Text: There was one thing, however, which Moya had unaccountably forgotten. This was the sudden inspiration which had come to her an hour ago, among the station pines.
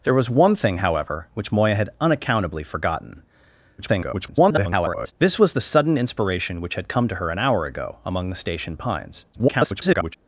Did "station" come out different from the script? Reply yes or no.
no